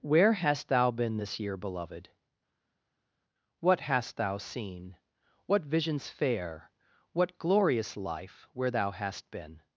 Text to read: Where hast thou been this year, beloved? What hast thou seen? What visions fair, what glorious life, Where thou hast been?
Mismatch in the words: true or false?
false